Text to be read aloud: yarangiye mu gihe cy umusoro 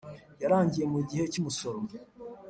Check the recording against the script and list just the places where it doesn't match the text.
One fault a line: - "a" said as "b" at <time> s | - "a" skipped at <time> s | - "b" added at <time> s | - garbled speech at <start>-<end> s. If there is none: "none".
none